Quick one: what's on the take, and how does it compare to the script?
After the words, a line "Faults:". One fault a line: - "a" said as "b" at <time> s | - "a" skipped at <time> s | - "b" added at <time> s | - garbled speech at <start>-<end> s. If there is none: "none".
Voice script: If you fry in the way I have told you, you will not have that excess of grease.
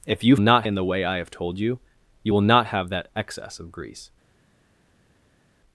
If you not in the way I have told you, you will not have that excess of grease.
Faults:
- "fry" said as "not" at 0.4 s